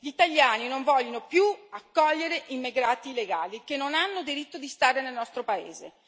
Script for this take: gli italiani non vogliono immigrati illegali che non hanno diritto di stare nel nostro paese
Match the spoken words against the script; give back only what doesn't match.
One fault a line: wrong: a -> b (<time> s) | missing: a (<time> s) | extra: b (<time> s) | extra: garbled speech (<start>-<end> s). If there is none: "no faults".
extra: più accogliere (1.3 s)